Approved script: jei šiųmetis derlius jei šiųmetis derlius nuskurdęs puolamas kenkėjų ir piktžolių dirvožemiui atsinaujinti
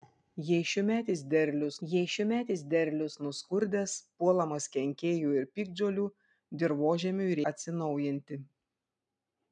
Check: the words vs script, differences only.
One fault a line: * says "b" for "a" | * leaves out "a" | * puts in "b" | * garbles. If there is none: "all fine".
all fine